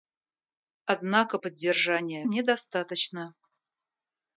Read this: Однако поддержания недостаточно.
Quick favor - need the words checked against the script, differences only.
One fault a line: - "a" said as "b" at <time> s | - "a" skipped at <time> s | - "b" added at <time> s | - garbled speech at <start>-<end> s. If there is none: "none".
none